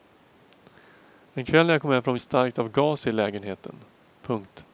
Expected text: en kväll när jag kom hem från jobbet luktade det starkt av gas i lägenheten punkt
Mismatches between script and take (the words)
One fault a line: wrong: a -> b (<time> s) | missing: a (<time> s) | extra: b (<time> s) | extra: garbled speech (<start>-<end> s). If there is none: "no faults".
missing: jobbet luktade (2.2 s)